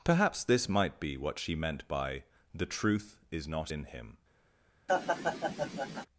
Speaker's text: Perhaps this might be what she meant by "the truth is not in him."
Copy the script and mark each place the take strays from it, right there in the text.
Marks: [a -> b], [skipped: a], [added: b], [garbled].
Perhaps this might be what she meant by "the truth is not in him."